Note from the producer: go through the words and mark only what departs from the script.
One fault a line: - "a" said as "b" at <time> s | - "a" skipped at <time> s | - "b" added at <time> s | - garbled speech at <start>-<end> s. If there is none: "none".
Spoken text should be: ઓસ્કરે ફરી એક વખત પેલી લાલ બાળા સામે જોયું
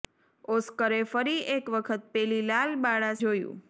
- "સામે" skipped at 3.1 s